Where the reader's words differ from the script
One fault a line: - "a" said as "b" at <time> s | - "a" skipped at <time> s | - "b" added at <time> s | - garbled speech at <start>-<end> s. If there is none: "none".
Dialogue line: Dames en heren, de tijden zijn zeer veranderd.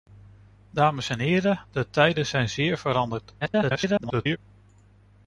- garbled speech at 3.4-4.4 s